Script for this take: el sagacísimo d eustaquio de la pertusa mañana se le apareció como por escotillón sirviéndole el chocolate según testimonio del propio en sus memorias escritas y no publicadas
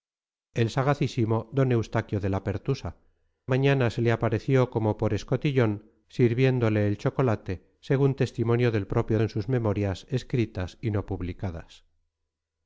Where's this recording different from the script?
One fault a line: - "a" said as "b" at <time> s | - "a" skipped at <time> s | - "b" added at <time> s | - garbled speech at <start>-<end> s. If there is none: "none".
none